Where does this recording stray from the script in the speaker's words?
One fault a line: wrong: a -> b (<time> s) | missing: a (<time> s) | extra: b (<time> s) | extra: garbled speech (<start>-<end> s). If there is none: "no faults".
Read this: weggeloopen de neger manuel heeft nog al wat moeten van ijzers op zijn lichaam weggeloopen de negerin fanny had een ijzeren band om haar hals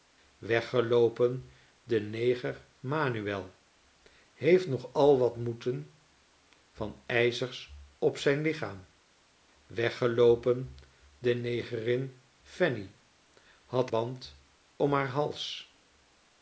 missing: een ijzeren (13.9 s)